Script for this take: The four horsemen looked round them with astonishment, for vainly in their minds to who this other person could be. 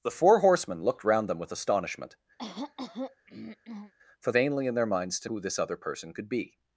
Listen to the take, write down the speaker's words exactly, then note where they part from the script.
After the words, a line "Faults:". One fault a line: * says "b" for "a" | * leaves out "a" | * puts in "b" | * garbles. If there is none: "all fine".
The four horsemen looked round them with astonishment, for vainly in their minds to who this other person could be.
Faults:
all fine